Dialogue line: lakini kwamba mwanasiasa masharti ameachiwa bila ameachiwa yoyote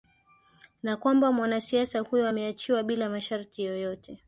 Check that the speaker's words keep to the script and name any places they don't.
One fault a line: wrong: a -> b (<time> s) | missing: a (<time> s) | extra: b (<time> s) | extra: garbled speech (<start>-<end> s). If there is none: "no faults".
wrong: lakini -> na (0.8 s)
wrong: masharti -> huyo (2.0 s)
wrong: ameachiwa -> masharti (3.1 s)